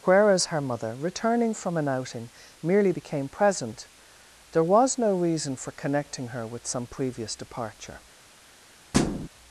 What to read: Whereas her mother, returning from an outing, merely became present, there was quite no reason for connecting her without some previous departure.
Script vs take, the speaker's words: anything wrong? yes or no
yes